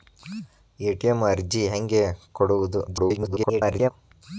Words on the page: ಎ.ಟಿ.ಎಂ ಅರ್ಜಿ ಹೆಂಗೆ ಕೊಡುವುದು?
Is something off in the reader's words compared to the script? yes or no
yes